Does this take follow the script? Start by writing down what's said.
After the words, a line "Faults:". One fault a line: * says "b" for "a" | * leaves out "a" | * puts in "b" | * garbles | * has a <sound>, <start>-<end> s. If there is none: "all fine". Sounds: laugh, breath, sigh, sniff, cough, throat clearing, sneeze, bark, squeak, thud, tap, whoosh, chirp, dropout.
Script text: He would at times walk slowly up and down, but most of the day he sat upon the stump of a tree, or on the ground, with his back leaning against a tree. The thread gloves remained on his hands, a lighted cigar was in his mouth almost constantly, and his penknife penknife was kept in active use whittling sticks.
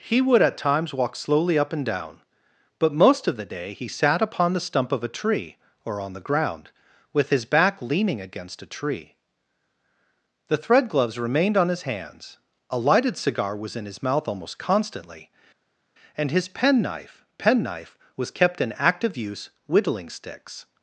He would at times walk slowly up and down, but most of the day he sat upon the stump of a tree, or on the ground, with his back leaning against a tree. The thread gloves remained on his hands, a lighted cigar was in his mouth almost constantly, and his penknife penknife was kept in active use whittling sticks.
Faults:
all fine